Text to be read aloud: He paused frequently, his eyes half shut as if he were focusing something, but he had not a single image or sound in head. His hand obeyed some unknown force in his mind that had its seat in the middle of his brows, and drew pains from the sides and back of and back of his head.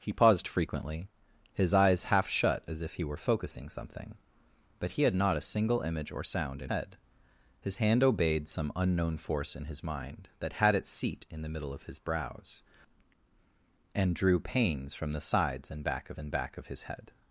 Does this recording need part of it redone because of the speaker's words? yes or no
no